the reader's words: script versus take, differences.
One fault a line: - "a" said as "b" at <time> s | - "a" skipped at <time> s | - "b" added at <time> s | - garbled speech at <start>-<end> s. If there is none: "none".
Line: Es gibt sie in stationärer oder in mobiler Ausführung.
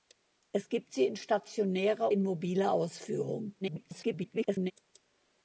- "oder" skipped at 2.1 s
- garbled speech at 3.6-4.7 s